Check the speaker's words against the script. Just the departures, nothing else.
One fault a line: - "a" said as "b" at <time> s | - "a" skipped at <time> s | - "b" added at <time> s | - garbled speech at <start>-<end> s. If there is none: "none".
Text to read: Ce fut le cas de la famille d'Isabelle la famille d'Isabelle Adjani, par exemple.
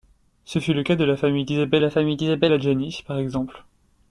none